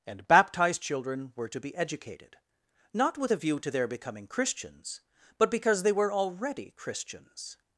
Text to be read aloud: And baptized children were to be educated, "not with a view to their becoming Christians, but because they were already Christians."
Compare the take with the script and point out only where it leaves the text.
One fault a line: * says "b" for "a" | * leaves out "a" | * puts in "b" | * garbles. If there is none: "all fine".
all fine